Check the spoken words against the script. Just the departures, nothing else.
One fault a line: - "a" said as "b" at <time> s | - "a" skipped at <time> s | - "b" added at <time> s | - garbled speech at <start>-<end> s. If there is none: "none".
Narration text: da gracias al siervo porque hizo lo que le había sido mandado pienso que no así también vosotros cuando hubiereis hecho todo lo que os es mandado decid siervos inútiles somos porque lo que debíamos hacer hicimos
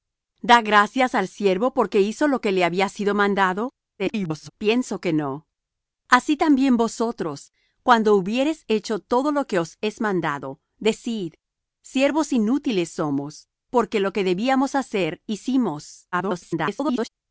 - garbled speech at 4.0-4.5 s
- garbled speech at 16.1-17.1 s